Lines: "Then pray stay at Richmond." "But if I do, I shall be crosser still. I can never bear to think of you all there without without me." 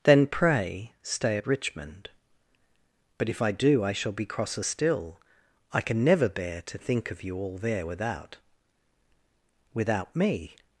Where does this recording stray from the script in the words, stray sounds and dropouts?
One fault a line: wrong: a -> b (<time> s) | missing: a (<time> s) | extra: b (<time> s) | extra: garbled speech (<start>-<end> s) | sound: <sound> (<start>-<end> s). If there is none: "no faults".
no faults